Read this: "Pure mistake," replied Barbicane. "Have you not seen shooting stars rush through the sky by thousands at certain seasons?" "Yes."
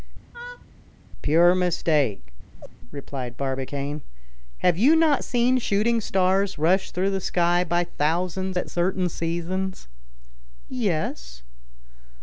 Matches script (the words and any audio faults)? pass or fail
fail